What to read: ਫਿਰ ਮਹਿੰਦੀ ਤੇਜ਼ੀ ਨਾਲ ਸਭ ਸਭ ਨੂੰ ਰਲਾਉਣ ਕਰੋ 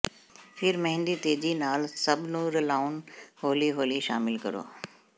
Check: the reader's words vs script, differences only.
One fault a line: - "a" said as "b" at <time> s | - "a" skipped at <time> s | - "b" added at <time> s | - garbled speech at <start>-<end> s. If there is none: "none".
- "ਸਭ" skipped at 2.2 s
- "ਹੌਲੀ ਹੌਲੀ ਸ਼ਾਮਿਲ" added at 3.4 s